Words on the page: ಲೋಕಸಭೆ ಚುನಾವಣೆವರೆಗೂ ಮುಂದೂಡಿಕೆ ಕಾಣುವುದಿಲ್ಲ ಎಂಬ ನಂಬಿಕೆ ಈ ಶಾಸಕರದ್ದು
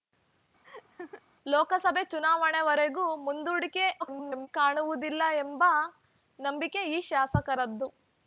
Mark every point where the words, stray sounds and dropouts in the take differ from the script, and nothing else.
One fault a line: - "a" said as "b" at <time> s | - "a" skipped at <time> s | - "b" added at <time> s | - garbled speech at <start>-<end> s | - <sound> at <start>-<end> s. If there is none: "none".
- laugh at 0.6-1.2 s
- garbled speech at 4.0-4.5 s